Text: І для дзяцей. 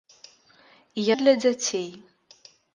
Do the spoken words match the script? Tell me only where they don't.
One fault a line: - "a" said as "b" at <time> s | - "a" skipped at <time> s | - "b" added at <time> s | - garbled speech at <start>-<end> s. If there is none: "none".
none